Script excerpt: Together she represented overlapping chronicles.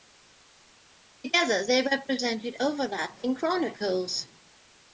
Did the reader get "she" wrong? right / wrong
wrong